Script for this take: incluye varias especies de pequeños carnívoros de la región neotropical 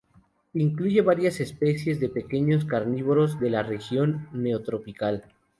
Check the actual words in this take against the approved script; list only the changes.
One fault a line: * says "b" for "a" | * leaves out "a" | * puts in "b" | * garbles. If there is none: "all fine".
all fine